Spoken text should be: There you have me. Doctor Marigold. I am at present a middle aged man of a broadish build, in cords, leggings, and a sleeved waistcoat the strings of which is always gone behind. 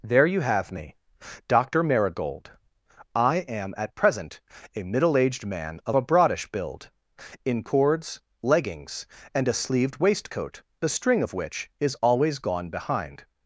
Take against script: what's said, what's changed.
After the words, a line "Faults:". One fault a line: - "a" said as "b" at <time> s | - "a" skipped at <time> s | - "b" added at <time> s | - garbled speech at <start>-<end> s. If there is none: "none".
There you have me. Doctor Marigold. I am at present a middle aged man of a broadish build, in cords, leggings, and a sleeved waistcoat the string of which is always gone behind.
Faults:
- "strings" said as "string" at 10.9 s